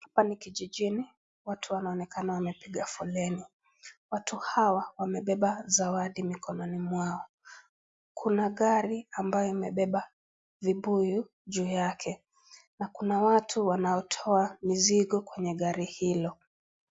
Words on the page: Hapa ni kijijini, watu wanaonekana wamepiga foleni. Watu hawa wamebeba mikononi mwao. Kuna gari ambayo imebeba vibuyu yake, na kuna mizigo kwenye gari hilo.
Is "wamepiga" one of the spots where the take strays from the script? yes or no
no